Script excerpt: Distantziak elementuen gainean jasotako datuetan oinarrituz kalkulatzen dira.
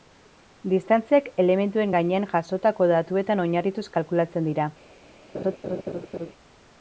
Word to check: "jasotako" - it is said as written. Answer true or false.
true